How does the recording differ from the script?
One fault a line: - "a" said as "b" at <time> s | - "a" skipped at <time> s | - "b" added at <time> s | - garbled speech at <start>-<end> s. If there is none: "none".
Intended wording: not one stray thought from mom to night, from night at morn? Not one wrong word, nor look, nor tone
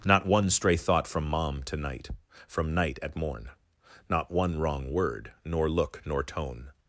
none